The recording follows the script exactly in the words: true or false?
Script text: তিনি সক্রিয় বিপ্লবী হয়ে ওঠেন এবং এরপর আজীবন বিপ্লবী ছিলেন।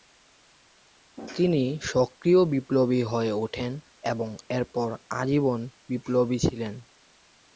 true